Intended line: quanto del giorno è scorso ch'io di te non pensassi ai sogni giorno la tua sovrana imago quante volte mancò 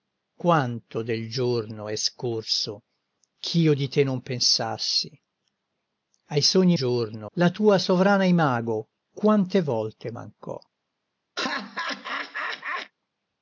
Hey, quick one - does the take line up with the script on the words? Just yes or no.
yes